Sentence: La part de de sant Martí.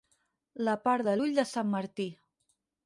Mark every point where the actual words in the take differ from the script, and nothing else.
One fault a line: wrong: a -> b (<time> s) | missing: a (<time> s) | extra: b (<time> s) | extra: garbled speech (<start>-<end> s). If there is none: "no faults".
extra: l'ull (1.1 s)